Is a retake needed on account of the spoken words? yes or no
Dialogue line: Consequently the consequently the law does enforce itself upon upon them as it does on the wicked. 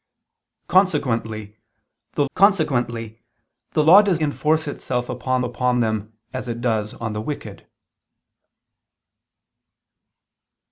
no